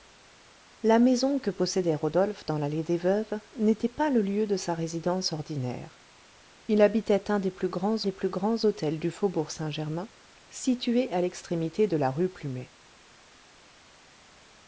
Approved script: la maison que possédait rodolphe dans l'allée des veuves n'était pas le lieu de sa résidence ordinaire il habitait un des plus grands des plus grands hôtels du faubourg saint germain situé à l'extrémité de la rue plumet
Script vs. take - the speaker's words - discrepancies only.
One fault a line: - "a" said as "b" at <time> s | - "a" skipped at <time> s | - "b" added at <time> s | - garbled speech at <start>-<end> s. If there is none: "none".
none